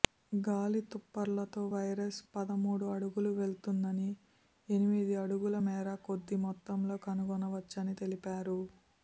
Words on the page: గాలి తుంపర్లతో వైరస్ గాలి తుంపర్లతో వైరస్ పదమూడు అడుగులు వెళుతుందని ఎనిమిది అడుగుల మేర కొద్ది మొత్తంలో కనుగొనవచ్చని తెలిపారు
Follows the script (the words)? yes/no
no